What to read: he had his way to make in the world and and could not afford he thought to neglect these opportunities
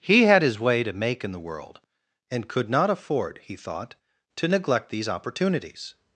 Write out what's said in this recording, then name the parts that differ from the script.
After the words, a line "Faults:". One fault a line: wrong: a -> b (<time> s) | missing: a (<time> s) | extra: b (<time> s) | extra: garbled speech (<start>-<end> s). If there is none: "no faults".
he had his way to make in the world and could not afford he thought to neglect these opportunities
Faults:
missing: and (2.5 s)